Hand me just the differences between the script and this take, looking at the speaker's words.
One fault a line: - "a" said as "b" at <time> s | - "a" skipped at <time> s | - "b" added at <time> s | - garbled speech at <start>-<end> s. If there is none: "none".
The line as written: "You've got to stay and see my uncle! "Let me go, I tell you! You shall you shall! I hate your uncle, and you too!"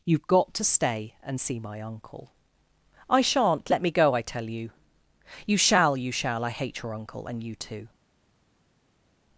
- "I shan't" added at 3.1 s